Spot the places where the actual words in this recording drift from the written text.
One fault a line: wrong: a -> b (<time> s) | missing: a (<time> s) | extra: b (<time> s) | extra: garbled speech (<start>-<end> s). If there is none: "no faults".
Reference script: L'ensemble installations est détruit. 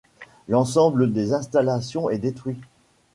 extra: des (1.1 s)